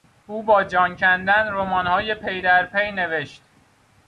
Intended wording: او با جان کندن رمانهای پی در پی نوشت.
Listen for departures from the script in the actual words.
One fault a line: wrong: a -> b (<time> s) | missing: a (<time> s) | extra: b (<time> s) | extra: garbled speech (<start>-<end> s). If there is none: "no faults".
no faults